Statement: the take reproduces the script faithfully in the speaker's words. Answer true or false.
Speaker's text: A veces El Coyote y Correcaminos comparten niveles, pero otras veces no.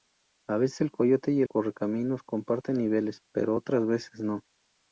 true